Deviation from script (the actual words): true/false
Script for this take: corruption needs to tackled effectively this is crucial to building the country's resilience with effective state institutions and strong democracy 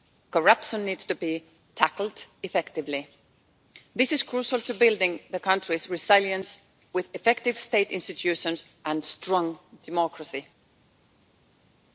true